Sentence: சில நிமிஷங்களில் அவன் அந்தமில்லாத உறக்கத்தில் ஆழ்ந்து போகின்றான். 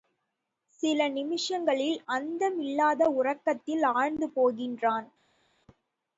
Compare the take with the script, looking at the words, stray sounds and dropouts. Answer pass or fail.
fail